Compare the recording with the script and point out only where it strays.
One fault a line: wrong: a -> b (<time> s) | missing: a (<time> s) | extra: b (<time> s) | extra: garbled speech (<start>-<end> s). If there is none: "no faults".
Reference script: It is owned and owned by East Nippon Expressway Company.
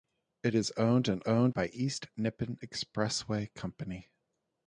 no faults